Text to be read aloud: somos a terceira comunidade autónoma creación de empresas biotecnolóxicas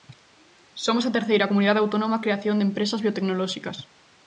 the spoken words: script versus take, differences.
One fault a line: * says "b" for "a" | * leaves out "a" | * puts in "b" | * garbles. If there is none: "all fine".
all fine